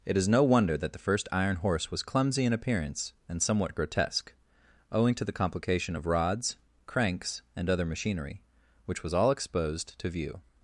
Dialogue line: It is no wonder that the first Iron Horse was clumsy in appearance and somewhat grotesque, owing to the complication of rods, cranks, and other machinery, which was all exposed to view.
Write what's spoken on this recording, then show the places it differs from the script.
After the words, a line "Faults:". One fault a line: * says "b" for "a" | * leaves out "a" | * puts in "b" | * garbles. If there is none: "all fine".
It is no wonder that the first Iron Horse was clumsy in appearance and somewhat grotesque, owing to the complication of rods, cranks, and other machinery, which was all exposed to view.
Faults:
all fine